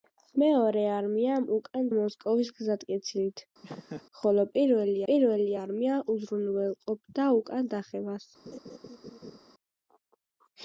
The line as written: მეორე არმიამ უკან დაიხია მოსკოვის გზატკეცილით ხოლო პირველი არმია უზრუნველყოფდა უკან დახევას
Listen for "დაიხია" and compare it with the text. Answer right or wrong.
wrong